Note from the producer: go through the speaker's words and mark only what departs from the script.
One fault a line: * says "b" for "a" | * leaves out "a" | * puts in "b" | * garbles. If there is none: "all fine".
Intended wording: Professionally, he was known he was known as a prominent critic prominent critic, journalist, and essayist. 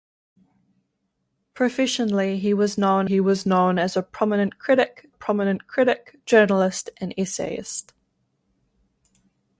all fine